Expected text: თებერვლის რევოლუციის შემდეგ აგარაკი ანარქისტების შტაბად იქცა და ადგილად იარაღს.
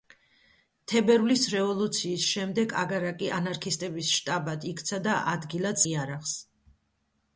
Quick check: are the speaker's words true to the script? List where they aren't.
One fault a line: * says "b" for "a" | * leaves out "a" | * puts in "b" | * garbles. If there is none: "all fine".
all fine